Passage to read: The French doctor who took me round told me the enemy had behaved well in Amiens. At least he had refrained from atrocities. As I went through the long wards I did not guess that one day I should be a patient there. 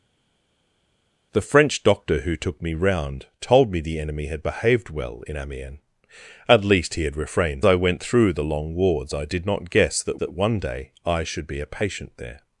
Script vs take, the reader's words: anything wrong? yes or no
yes